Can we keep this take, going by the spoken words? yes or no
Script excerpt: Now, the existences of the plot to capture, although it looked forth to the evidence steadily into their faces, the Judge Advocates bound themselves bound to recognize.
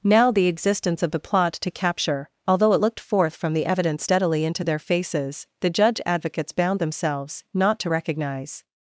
no